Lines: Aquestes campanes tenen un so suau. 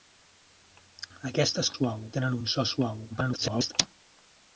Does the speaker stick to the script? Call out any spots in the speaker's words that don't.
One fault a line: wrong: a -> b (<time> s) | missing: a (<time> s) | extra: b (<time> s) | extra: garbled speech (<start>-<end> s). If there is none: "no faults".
wrong: campanes -> suau (1.7 s)
extra: garbled speech (3.1-3.7 s)